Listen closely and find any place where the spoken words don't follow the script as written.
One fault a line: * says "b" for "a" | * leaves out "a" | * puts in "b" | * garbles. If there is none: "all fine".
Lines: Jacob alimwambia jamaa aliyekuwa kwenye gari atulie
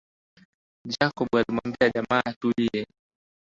* leaves out "aliyekuwa kwenye gari"